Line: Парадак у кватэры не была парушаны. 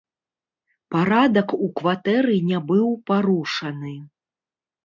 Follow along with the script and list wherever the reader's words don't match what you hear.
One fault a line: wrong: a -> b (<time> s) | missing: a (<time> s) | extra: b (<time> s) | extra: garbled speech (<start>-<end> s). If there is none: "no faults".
wrong: была -> быў (2.7 s)